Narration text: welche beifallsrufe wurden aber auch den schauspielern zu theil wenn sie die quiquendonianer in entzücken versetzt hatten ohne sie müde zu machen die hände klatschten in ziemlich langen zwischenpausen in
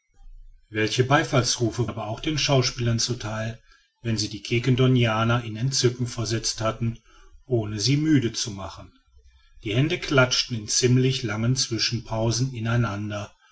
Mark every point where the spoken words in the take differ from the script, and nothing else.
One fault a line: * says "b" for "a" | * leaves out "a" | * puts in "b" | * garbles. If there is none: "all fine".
* leaves out "wurden"